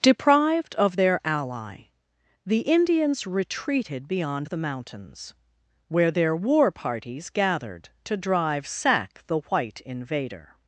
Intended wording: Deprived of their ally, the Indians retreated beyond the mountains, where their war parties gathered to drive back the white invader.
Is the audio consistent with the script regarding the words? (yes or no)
no